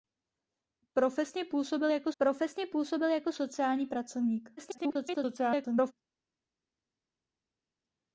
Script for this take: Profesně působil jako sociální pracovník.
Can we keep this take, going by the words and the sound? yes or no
no